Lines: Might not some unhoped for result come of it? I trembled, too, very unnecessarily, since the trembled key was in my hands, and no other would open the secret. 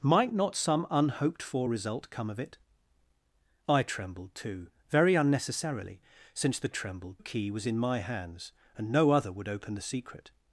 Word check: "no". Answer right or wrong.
right